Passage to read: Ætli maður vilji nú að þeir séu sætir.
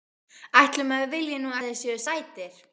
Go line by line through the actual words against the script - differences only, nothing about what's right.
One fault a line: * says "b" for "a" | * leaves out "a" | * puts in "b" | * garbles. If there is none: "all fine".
all fine